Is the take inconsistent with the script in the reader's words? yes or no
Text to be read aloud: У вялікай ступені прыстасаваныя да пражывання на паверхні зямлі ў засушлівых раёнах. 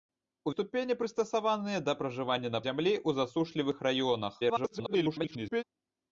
yes